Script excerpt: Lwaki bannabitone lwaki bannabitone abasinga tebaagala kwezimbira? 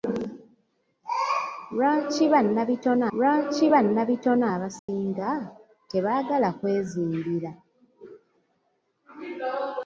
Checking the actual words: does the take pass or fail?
pass